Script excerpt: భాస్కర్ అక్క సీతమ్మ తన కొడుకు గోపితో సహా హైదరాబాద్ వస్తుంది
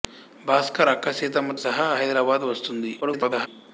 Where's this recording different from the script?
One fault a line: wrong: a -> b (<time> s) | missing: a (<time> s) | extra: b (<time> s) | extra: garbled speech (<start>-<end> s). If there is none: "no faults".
missing: తన కొడుకు గోపితో (1.6 s)
extra: garbled speech (3.0-3.5 s)